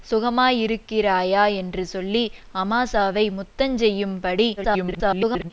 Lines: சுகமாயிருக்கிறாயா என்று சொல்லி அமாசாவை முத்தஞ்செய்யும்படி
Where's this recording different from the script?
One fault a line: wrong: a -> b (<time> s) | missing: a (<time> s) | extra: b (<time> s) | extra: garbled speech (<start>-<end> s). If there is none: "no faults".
extra: garbled speech (4.6-5.5 s)